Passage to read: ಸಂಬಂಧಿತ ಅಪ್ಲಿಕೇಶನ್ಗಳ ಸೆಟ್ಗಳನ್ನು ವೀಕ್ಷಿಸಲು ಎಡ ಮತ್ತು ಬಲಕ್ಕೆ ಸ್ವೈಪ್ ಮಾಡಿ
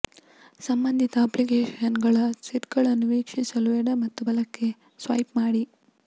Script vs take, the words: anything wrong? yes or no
no